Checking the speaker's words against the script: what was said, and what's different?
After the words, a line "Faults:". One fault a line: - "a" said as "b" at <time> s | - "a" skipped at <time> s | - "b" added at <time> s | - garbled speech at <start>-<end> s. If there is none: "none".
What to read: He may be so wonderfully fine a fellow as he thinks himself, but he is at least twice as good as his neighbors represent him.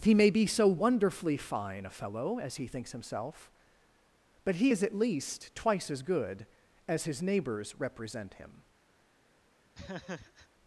He may be so wonderfully fine a fellow as he thinks himself, but he is at least twice as good as his neighbors represent him.
Faults:
none